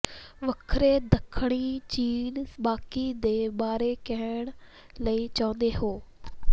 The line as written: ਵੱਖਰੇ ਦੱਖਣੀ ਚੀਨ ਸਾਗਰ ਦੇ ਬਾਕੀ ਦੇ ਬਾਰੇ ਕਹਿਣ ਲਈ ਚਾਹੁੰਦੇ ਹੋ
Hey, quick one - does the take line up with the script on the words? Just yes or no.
no